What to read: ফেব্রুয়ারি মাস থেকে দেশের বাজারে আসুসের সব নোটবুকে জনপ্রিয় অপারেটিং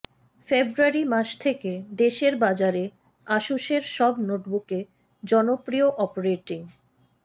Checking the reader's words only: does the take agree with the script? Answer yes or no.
yes